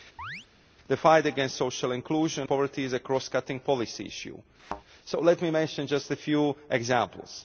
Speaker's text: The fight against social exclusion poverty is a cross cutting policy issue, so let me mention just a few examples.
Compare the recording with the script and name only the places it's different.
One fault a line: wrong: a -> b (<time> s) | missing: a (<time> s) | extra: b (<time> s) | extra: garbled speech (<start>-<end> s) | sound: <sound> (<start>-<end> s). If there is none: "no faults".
sound: chirp (0.2-0.5 s)
sound: thud (4.6-4.8 s)